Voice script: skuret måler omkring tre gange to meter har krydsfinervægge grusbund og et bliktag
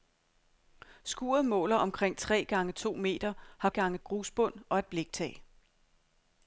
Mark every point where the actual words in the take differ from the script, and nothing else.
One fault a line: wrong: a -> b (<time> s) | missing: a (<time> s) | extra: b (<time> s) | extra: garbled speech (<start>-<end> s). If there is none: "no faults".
wrong: krydsfinervægge -> gange (3.7 s)